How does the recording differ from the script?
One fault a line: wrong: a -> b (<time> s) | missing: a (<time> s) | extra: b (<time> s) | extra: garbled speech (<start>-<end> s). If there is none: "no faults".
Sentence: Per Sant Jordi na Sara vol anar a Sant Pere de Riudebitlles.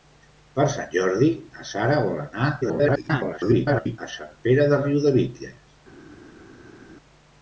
extra: garbled speech (2.6-4.0 s)